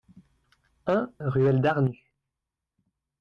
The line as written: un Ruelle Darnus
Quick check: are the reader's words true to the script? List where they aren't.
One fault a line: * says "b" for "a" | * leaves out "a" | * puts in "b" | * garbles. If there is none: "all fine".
all fine